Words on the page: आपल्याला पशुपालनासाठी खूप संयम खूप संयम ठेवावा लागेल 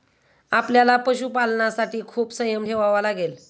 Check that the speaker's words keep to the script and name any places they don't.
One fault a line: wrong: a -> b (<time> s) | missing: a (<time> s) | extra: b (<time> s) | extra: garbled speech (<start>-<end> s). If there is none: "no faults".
missing: खूप संयम (2.7 s)